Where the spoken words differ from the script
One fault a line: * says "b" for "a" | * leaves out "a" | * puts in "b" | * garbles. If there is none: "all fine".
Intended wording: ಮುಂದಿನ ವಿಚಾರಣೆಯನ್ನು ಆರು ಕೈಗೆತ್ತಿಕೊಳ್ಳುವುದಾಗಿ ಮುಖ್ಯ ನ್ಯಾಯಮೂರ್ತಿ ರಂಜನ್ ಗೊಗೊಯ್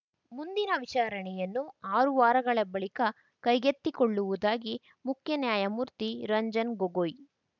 * puts in "ವಾರಗಳ ಬಳಿಕ"